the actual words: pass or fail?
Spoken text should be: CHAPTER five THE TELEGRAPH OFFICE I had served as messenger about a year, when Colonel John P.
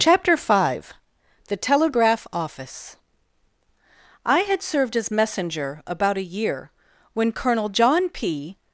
pass